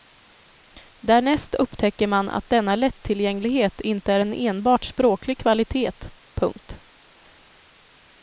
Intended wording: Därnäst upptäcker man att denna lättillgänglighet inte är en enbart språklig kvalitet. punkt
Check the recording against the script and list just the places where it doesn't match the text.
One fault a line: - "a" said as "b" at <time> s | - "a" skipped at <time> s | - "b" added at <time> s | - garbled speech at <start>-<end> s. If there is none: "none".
none